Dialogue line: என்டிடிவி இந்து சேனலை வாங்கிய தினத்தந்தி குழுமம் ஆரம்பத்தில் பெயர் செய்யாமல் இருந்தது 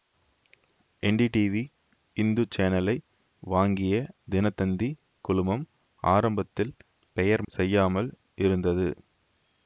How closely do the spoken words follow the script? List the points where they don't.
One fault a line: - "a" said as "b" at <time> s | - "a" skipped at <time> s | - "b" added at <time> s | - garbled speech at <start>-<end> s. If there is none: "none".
none